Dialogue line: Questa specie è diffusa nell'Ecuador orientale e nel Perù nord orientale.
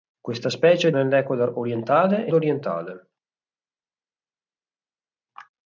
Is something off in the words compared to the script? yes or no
yes